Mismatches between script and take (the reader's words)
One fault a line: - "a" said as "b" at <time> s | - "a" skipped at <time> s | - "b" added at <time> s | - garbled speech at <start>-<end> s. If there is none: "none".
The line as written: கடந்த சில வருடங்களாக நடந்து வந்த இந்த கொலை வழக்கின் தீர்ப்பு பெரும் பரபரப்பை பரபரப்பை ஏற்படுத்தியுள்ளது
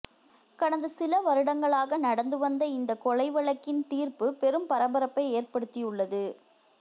- "பரபரப்பை" skipped at 5.3 s